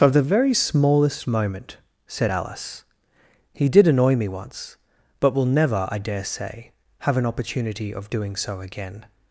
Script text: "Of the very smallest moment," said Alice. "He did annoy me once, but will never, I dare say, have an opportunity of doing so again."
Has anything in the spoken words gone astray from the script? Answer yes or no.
no